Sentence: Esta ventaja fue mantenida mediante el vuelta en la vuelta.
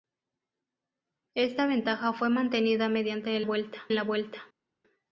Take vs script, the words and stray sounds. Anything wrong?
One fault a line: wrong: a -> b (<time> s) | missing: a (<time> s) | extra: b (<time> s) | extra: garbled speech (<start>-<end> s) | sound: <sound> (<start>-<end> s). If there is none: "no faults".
no faults